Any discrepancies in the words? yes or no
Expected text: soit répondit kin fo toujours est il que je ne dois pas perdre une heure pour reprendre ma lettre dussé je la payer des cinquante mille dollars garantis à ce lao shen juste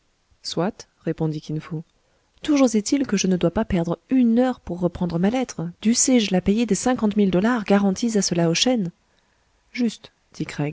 no